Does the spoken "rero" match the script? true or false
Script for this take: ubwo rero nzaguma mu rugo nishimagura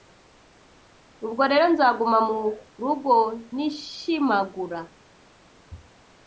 true